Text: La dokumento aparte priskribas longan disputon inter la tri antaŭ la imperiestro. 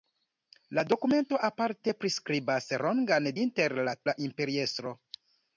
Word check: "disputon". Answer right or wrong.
wrong